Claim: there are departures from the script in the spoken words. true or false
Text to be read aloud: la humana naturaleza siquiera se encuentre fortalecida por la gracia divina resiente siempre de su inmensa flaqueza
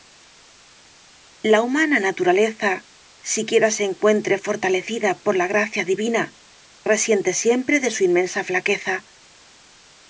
false